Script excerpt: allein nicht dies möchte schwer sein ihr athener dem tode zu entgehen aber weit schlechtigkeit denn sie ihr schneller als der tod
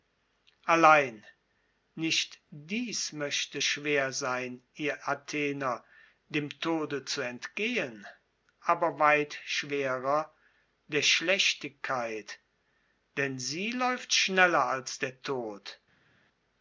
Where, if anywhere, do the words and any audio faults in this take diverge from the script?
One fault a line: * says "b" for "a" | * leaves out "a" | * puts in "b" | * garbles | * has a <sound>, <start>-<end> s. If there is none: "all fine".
* puts in "schwerer der"
* says "läuft" for "ihr"